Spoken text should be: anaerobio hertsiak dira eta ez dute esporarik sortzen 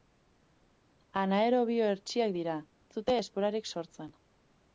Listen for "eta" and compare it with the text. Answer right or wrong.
wrong